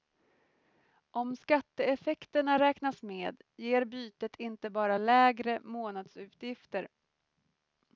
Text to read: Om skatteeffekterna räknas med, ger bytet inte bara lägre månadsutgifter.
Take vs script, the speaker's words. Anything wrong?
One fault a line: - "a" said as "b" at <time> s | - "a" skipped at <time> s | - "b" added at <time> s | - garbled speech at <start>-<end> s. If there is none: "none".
none